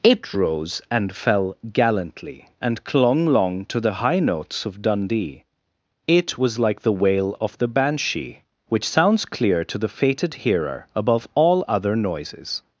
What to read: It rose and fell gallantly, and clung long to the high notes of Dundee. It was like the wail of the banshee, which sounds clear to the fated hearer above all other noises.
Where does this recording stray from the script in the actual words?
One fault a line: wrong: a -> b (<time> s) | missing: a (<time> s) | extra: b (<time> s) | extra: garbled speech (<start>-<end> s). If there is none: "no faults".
no faults